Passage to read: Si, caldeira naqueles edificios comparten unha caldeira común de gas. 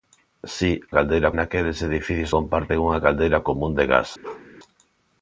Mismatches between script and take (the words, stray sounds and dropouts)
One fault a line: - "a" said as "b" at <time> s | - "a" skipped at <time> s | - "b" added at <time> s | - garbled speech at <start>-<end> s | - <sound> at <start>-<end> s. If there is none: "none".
- bark at 4.2-4.5 s